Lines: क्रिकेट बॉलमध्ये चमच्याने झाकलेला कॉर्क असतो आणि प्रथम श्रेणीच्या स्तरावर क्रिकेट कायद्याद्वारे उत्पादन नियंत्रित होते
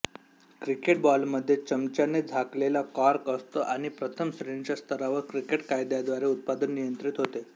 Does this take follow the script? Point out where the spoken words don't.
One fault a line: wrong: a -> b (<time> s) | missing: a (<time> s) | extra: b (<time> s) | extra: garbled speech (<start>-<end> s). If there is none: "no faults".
no faults